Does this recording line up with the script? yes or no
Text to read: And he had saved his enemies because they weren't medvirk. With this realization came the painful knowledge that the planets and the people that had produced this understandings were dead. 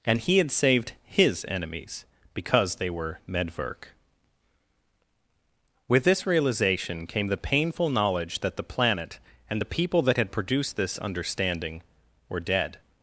no